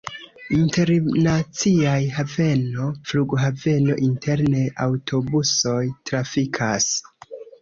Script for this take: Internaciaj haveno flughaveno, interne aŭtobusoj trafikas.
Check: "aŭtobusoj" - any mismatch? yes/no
no